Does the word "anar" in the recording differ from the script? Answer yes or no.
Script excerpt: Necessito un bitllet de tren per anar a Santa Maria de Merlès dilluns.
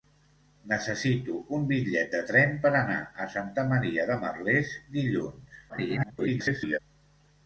no